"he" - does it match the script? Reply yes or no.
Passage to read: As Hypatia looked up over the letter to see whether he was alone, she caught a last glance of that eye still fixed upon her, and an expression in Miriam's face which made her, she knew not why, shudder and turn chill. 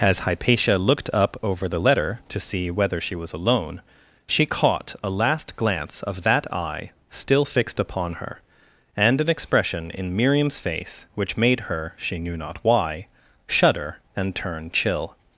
no